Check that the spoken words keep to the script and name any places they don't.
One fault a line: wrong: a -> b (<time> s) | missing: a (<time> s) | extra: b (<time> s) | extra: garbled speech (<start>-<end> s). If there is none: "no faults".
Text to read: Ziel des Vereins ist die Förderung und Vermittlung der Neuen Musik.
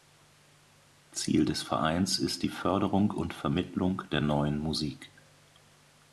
no faults